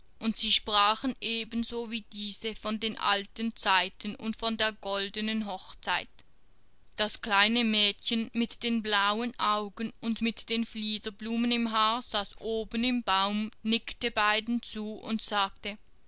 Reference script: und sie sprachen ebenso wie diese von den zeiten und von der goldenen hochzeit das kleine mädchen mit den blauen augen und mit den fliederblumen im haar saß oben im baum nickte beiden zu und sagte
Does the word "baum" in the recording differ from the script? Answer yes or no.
no